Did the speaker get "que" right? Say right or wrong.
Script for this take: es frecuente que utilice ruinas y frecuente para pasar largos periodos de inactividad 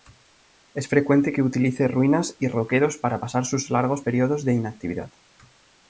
right